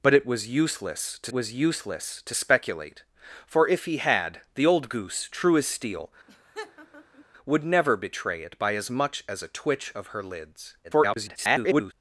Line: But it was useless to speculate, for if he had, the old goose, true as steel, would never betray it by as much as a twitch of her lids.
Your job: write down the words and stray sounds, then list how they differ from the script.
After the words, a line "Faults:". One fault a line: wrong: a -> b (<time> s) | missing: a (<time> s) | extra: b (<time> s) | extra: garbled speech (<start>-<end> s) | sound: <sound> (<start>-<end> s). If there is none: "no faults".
But it was useless to was useless to speculate, for if he had, the old goose, true as steel, would never betray it by as much as a twitch of her lids. [garbled]
Faults:
extra: was useless to (1.3 s)
sound: laugh (6.3-7.2 s)
extra: garbled speech (10.8-11.9 s)